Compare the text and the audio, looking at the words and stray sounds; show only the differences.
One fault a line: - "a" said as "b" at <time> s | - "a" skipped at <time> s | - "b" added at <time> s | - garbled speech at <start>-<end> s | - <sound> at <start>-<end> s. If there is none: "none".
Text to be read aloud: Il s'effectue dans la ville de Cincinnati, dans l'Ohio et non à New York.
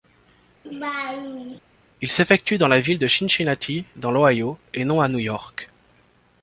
- laugh at 0.7-1.6 s